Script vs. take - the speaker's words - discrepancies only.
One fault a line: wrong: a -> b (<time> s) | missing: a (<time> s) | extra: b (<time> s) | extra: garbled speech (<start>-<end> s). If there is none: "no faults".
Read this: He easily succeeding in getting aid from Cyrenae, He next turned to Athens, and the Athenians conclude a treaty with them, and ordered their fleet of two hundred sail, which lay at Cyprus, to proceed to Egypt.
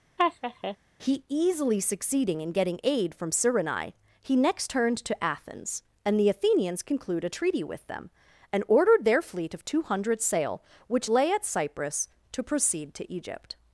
no faults